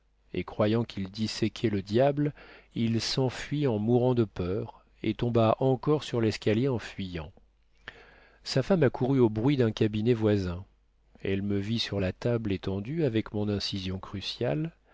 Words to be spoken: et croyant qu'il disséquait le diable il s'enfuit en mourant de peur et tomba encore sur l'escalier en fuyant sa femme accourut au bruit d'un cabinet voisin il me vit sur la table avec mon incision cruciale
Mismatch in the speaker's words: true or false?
true